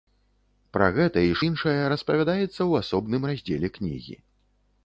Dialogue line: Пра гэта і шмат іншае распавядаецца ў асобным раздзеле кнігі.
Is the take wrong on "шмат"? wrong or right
wrong